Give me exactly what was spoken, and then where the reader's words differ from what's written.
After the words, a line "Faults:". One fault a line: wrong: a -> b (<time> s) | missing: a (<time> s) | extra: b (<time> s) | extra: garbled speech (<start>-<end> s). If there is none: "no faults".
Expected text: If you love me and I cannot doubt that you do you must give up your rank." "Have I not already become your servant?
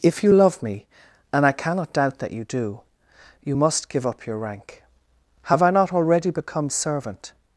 If you love me and I cannot doubt that you do you must give up your rank." "Have I not already become servant?
Faults:
missing: your (6.7 s)